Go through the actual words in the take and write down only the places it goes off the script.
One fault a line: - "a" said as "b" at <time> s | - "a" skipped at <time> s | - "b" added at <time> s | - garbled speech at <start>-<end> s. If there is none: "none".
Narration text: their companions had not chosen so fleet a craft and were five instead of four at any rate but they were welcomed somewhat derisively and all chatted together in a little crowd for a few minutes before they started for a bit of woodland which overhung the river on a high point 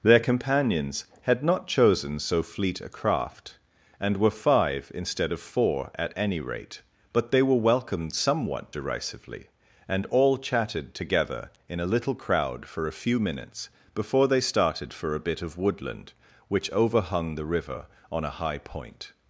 none